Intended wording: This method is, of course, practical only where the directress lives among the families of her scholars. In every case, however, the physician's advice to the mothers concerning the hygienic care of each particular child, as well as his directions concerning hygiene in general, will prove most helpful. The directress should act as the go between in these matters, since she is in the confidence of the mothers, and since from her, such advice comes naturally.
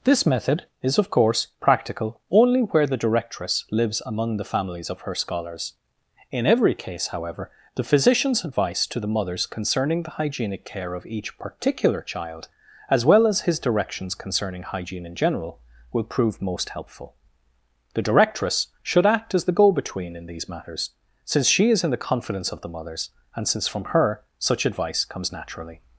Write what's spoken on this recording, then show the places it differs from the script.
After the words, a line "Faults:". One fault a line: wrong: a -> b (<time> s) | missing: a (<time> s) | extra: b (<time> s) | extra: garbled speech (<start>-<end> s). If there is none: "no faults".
This method is, of course, practical only where the directress lives among the families of her scholars. In every case, however, the physician's advice to the mothers concerning the hygienic care of each particular child, as well as his directions concerning hygiene in general, will prove most helpful. The directress should act as the go between in these matters, since she is in the confidence of the mothers, and since from her, such advice comes naturally.
Faults:
no faults